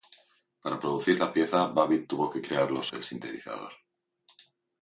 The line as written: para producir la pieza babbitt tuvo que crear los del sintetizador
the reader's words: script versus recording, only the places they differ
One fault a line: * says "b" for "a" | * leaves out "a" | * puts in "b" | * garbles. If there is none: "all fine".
all fine